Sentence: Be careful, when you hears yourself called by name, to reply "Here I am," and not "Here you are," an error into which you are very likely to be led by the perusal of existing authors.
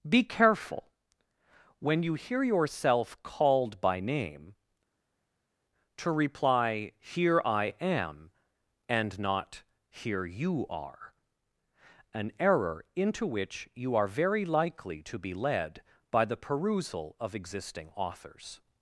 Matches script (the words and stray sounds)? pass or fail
fail